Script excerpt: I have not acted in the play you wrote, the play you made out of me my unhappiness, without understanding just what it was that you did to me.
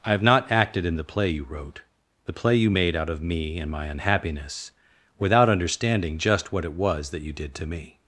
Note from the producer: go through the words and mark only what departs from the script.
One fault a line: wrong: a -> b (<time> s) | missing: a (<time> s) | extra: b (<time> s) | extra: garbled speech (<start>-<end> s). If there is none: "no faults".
extra: and (3.6 s)